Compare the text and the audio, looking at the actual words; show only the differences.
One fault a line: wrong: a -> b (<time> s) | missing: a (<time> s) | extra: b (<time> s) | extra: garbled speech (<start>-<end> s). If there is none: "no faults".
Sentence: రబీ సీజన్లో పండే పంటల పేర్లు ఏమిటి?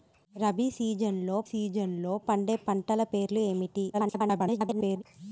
extra: సీజన్లో (1.4 s)
extra: garbled speech (3.9-5.0 s)